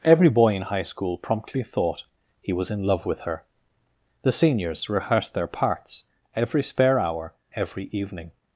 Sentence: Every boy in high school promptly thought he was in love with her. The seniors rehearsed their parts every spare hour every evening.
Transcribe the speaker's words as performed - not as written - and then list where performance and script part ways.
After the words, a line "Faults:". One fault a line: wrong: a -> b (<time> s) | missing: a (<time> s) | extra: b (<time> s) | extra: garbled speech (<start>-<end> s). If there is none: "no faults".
Every boy in high school promptly thought he was in love with her. The seniors rehearsed their parts every spare hour every evening.
Faults:
no faults